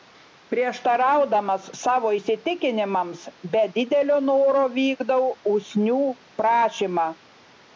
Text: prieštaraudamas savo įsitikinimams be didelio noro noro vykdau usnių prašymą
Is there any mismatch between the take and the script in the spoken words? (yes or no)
yes